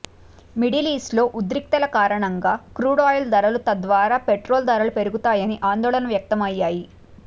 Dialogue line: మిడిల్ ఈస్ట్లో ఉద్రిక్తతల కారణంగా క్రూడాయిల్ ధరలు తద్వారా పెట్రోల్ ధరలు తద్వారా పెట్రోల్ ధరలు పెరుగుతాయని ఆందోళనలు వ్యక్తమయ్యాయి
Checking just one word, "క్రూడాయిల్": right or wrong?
right